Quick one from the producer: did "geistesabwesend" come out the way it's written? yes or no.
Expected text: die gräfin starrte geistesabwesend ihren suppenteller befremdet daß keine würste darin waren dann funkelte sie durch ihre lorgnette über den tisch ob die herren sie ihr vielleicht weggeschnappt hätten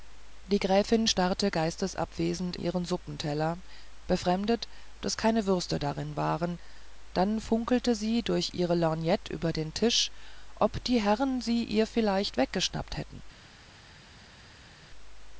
yes